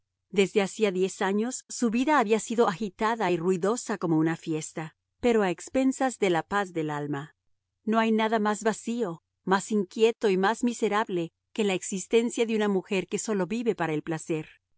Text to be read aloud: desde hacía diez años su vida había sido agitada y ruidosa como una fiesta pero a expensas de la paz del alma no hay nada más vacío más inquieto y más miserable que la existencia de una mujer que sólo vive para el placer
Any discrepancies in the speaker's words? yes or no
no